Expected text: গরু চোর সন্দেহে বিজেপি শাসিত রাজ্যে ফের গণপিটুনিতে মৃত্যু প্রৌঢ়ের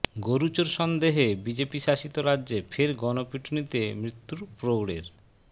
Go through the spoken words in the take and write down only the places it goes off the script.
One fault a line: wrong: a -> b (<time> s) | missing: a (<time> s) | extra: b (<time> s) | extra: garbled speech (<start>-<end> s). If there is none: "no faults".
no faults